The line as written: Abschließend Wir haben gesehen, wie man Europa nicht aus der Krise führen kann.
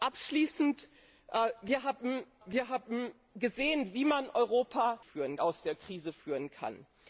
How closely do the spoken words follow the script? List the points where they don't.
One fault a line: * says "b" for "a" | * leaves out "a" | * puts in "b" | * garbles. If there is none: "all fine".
* puts in "Wir haben"
* says "führen" for "nicht"